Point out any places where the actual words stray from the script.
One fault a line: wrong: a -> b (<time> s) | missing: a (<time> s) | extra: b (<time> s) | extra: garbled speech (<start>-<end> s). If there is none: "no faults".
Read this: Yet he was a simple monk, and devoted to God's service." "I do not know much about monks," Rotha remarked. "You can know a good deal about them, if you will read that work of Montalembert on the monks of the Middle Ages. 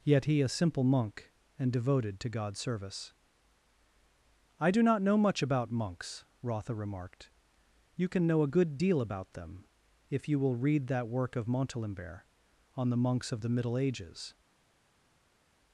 missing: was (0.4 s)